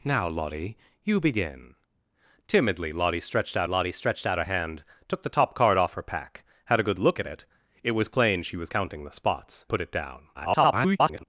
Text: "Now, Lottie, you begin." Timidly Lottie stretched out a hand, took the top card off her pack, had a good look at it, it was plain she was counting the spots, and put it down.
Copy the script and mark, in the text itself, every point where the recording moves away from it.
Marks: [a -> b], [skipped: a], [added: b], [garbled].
"Now, Lottie, you begin." Timidly Lottie stretched out [added: Lottie stretched out] a hand, took the top card off her pack, had a good look at it, it was plain she was counting the spots, [skipped: and] put it down. [garbled]